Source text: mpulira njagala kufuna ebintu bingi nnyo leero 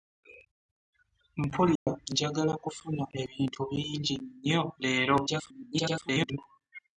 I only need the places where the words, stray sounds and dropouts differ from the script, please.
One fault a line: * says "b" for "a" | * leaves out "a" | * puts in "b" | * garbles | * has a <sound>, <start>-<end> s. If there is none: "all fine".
* has a dropout, 1.8-1.9 s
* garbles